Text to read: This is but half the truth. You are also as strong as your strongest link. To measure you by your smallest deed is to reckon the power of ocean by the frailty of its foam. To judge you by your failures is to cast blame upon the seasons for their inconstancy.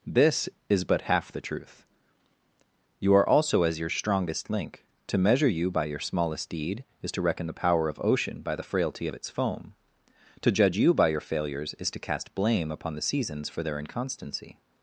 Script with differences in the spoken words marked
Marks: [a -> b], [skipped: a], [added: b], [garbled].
This is but half the truth. You are also as [skipped: strong as] your strongest link. To measure you by your smallest deed is to reckon the power of ocean by the frailty of its foam. To judge you by your failures is to cast blame upon the seasons for their inconstancy.